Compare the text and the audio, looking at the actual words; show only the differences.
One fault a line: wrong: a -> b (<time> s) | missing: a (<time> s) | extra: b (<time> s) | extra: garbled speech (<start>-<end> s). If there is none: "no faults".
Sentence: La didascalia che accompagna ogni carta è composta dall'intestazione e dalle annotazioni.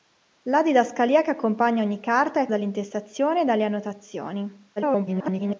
missing: composta (2.5 s)
extra: garbled speech (4.8-5.6 s)